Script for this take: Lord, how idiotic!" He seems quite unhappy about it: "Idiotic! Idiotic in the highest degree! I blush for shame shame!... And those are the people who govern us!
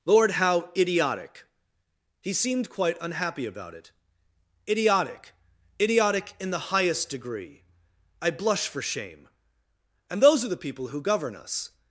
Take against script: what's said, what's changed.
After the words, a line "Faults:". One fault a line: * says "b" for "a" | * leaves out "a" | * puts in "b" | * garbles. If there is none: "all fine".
Lord, how idiotic!" He seemed quite unhappy about it: "Idiotic! Idiotic in the highest degree! I blush for shame!... And those are the people who govern us!
Faults:
* says "seemed" for "seems"
* leaves out "shame"